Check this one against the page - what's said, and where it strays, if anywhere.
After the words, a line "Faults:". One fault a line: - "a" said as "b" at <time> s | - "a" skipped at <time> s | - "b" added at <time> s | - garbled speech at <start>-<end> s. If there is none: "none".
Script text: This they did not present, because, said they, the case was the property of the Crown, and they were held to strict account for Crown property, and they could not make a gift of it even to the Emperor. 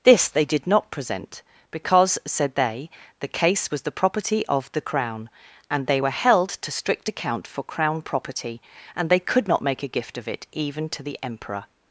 This they did not present, because, said they, the case was the property of the Crown, and they were held to strict account for Crown property, and they could not make a gift of it even to the Emperor.
Faults:
none